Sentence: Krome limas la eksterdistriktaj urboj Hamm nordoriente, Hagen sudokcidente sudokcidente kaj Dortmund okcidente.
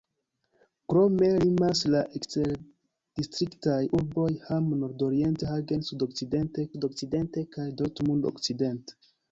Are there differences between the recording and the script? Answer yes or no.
no